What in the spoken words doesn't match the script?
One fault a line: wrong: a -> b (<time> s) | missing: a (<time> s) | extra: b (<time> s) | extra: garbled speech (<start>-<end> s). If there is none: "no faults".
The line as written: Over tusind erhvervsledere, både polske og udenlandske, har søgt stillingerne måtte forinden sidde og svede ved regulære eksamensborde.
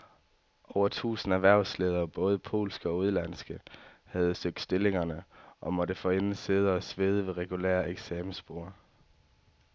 wrong: har -> havde (4.0 s)
extra: og (5.6 s)